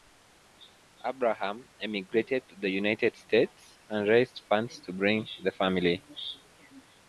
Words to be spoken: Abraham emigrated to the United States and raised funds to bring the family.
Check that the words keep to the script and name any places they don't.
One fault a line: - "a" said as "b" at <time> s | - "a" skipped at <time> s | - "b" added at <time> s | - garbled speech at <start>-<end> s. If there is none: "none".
none